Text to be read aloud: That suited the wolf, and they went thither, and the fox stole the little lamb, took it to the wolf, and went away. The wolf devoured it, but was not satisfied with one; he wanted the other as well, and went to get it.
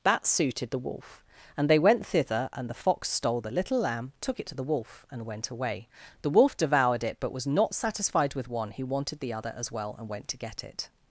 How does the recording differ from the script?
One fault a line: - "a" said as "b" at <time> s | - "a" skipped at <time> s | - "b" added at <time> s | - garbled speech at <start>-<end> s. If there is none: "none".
none